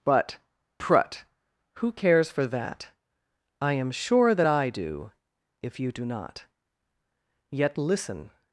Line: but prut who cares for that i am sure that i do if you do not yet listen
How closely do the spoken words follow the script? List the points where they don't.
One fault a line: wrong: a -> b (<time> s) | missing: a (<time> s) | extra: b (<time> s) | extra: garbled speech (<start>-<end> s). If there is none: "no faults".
no faults